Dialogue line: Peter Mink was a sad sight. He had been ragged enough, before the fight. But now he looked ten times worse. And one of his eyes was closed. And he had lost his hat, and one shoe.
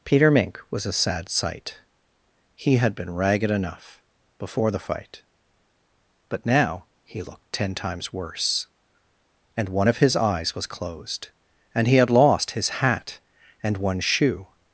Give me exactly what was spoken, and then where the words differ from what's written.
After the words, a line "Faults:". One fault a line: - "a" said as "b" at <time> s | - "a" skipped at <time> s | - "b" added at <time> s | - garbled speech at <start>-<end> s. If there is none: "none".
Peter Mink was a sad sight. He had been ragged enough, before the fight. But now he looked ten times worse. And one of his eyes was closed. And he had lost his hat, and one shoe.
Faults:
none